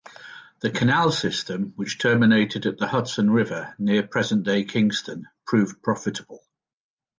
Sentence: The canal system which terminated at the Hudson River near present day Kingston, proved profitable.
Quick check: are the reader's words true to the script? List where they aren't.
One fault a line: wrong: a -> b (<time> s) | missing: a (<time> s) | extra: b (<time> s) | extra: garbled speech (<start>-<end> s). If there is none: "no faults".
no faults